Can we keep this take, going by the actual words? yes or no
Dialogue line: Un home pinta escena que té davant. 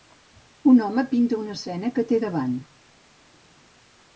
no